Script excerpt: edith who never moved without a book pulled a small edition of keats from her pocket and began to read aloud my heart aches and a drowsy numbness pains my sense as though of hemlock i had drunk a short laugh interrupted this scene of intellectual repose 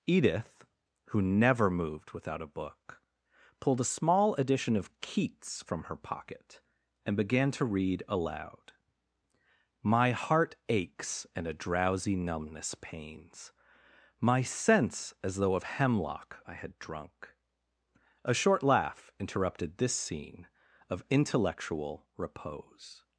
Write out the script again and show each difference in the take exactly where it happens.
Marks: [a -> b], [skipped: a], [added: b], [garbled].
edith who never moved without a book pulled a small edition of keats from her pocket and began to read aloud my heart aches and a drowsy numbness pains my sense as though of hemlock i had drunk a short laugh interrupted this scene of intellectual repose